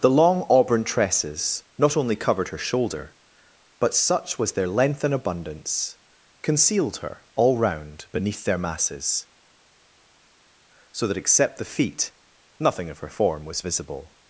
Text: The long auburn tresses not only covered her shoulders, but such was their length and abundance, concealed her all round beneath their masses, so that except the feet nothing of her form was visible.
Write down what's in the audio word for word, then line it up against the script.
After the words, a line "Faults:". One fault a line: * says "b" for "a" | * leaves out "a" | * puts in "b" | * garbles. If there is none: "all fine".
The long auburn tresses not only covered her shoulder, but such was their length and abundance, concealed her all round beneath their masses, so that except the feet nothing of her form was visible.
Faults:
* says "shoulder" for "shoulders"